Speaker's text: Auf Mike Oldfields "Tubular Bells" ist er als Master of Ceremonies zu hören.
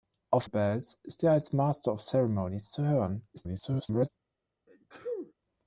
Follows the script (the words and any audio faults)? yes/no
no